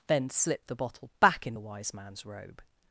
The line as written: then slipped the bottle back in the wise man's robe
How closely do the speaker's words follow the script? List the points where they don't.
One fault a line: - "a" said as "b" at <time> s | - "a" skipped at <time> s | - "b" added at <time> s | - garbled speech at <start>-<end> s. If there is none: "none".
none